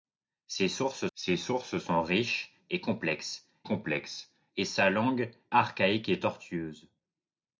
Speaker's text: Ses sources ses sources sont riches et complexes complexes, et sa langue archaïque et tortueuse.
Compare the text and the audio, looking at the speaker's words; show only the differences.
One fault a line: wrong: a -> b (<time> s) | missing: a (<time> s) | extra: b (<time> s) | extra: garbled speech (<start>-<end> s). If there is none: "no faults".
no faults